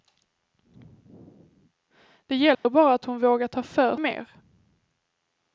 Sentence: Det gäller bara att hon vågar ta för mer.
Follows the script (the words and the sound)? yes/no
no